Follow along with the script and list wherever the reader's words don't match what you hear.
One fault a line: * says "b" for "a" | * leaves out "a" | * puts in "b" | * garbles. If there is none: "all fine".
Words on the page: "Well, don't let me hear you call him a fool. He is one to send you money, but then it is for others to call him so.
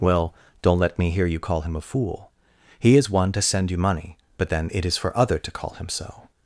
* says "other" for "others"